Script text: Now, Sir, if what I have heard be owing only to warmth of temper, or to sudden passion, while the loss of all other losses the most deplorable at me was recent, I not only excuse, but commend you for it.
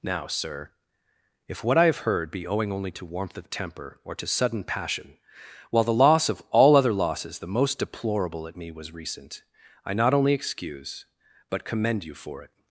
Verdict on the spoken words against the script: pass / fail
pass